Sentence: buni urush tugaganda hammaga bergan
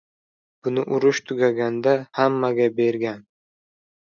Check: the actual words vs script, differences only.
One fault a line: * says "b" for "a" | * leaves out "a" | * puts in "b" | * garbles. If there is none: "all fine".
all fine